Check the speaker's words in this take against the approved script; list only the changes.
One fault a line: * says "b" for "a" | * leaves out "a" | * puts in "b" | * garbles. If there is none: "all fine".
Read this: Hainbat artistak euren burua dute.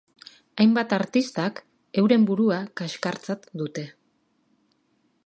* puts in "kaxkartzat"